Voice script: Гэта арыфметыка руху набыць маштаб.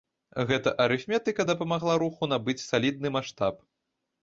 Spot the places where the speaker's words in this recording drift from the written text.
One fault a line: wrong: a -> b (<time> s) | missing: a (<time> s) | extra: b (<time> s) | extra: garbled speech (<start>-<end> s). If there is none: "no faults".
extra: дапамагла (1.5 s)
extra: салідны (2.7 s)